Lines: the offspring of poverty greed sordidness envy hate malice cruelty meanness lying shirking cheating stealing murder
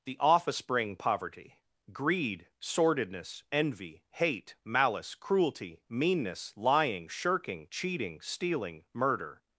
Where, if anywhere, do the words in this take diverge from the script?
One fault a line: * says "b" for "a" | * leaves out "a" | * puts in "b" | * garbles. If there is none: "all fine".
* leaves out "of"